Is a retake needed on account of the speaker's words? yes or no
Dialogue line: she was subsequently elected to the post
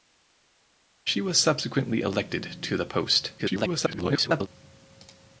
yes